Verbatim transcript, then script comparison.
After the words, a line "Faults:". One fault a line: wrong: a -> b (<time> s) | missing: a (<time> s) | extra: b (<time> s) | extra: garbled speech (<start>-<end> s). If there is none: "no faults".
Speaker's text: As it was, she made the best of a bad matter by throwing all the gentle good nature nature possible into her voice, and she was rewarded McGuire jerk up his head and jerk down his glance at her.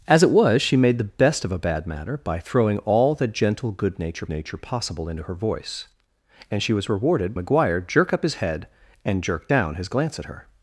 As it was, she made the best of a bad matter by throwing all the gentle good nature nature possible into her voice, and she was rewarded McGuire jerk up his head and jerk down his glance at her.
Faults:
no faults